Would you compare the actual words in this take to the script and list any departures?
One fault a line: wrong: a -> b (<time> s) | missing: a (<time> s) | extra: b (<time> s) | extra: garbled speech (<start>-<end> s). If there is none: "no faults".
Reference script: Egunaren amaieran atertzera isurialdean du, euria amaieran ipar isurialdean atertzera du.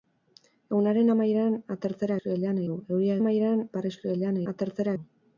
no faults